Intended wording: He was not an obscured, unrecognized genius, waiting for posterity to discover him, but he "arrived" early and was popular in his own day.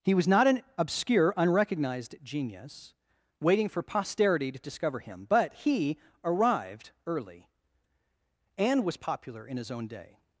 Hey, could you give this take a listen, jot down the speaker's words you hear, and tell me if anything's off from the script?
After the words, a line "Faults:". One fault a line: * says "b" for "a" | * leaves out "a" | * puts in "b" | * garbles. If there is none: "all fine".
He was not an obscure, unrecognized genius, waiting for posterity to discover him, but he "arrived" early and was popular in his own day.
Faults:
* says "obscure" for "obscured"